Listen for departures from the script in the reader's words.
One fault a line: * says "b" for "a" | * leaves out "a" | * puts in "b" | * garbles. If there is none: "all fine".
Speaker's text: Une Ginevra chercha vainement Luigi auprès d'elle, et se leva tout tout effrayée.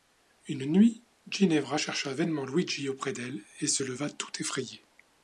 * puts in "nuit"
* leaves out "tout"